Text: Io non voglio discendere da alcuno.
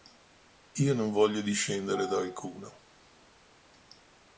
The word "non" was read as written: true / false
true